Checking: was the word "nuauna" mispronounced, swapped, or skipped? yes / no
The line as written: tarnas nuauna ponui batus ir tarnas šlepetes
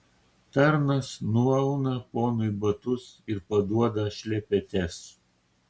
no